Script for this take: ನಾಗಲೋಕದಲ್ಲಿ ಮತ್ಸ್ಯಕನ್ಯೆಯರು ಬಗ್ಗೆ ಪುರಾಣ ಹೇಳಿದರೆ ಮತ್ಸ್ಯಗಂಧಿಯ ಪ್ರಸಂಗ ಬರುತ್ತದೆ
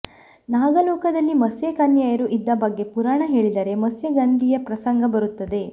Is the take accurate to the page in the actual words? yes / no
no